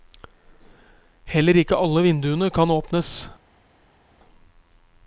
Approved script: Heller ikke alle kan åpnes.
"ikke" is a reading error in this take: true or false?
false